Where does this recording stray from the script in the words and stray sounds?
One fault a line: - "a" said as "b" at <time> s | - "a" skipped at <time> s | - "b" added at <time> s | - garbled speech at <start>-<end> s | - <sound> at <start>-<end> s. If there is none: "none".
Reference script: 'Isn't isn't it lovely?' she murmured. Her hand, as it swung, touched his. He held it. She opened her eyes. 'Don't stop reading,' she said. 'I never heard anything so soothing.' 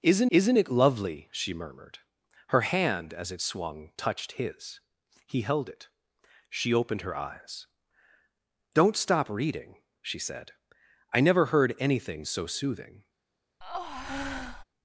- breath at 13.6-14.6 s